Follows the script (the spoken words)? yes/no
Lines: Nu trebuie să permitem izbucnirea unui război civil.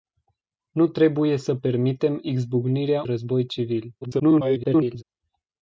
no